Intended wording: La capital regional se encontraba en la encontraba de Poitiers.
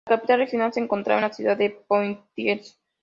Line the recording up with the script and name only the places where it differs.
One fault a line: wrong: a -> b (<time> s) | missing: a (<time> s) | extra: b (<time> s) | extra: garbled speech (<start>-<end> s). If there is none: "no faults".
wrong: encontraba -> ciudad (1.3 s)